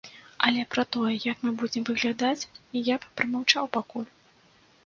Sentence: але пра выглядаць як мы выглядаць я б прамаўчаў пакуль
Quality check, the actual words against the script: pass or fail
fail